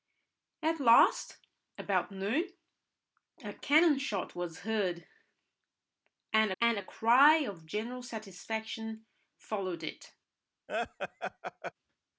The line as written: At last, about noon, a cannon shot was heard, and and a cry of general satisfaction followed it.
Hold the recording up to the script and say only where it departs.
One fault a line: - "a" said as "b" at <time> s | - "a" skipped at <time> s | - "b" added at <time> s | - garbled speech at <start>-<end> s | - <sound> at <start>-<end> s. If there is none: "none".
- laugh at 10.7-11.7 s